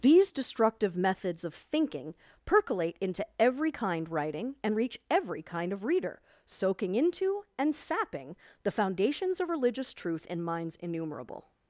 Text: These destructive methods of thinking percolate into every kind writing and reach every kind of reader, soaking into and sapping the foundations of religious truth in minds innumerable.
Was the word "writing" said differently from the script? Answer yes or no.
no